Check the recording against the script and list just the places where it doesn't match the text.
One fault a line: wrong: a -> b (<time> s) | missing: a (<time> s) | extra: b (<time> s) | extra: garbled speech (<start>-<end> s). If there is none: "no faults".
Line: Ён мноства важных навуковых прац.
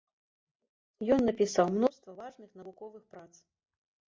extra: напісаў (1.3 s)